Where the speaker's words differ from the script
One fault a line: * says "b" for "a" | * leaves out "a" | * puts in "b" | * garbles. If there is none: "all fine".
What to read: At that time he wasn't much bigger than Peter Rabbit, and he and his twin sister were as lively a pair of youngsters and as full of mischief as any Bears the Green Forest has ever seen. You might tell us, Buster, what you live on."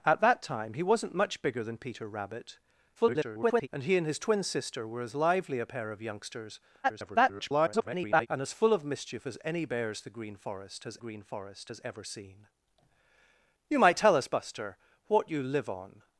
* garbles
* garbles
* puts in "Green Forest has"